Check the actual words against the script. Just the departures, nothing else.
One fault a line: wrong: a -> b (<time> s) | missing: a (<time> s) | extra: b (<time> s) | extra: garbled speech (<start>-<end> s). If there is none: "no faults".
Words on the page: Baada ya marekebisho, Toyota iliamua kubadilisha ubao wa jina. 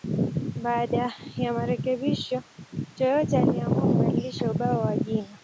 no faults